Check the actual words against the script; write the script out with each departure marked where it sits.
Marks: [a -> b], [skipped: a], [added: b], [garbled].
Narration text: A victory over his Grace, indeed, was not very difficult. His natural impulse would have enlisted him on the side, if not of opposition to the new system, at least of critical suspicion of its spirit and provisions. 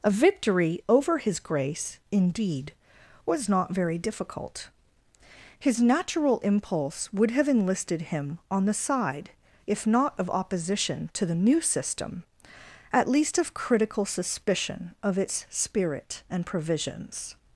A victory over his Grace, indeed, was not very difficult. His natural impulse would have enlisted him on the side, if not of opposition to the new system, at least of critical suspicion of its spirit and provisions.